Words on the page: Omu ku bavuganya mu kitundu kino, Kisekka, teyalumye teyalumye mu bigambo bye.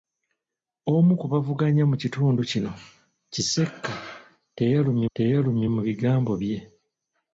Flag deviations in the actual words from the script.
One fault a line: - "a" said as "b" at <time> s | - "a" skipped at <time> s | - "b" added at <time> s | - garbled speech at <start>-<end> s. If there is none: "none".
none